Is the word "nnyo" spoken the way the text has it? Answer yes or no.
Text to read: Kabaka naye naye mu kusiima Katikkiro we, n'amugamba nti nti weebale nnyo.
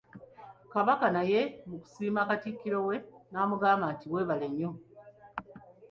yes